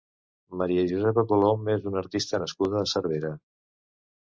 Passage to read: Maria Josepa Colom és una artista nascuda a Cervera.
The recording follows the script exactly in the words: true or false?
true